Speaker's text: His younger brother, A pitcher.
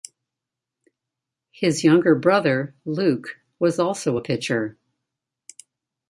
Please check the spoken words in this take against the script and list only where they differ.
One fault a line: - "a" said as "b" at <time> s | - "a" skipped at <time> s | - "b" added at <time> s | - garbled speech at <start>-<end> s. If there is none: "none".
- "Luke was also" added at 2.9 s